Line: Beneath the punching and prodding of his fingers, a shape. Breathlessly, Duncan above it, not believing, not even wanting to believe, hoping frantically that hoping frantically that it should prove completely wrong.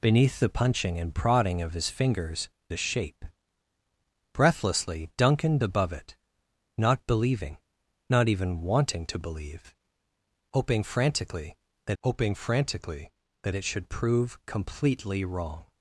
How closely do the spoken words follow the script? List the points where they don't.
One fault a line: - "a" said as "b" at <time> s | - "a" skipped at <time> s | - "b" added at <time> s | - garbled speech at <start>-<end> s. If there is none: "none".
none